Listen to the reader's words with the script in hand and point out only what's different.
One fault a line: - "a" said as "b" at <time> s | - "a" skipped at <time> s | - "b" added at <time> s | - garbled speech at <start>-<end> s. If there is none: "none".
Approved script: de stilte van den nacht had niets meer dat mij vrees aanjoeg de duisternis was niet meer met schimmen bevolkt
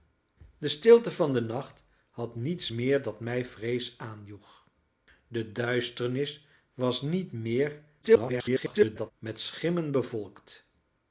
- garbled speech at 8.0-9.1 s